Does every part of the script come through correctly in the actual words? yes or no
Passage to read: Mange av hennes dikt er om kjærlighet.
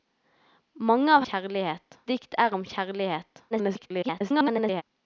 no